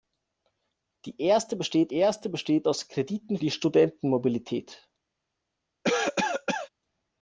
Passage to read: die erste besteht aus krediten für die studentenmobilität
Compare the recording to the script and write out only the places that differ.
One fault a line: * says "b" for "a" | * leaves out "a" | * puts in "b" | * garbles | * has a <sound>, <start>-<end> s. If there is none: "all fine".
* puts in "erste besteht"
* leaves out "für"
* has a cough, 5.8-6.7 s